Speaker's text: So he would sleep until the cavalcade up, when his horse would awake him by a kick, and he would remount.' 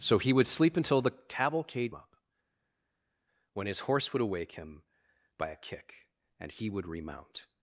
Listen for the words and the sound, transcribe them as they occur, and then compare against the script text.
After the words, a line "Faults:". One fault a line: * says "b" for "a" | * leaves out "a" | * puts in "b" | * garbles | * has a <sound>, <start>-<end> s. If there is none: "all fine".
So he would sleep until the cavalcade up, when his horse would awake him by a kick, and he would remount.'
Faults:
all fine